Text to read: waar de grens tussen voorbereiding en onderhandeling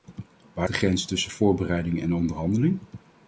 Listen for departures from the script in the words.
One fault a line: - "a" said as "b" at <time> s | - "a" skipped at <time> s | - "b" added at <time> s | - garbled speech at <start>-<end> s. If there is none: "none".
none